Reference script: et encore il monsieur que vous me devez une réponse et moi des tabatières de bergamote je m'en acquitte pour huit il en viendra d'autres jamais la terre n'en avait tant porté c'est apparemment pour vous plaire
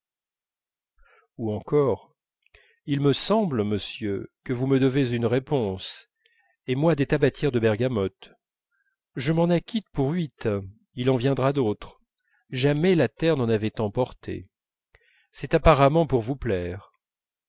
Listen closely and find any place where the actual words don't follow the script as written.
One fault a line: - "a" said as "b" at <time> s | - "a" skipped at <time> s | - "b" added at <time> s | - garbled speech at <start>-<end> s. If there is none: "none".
- "et" said as "ou" at 1.4 s
- "me semble" added at 3.0 s